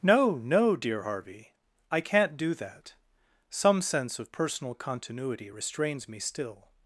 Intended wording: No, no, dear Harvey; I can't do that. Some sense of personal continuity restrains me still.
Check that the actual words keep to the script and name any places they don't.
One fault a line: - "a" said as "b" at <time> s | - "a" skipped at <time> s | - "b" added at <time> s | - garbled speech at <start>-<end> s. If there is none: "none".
none